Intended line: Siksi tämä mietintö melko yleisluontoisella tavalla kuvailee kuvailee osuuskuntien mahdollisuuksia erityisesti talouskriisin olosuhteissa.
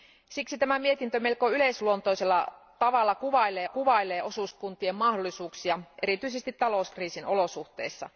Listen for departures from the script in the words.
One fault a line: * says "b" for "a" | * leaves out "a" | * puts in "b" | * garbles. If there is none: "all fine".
all fine